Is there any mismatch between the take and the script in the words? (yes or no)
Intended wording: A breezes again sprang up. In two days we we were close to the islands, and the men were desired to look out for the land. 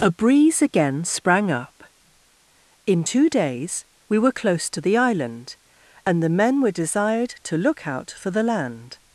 yes